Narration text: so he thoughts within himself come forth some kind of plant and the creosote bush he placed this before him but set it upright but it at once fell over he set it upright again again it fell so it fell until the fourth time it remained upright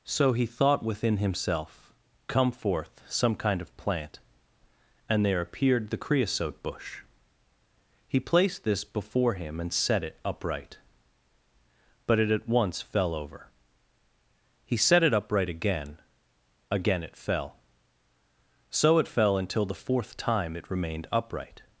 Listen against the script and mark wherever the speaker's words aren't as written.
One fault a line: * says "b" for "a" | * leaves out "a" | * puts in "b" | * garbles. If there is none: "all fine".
* says "thought" for "thoughts"
* puts in "there appeared"
* says "and" for "but"